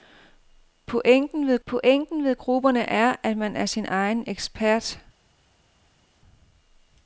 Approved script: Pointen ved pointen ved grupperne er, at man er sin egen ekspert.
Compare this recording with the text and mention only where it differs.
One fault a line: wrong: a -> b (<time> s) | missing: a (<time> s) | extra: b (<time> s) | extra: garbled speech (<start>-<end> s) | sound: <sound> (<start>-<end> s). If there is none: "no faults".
no faults